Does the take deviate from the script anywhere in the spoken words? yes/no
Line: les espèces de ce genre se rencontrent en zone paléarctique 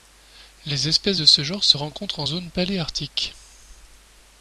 no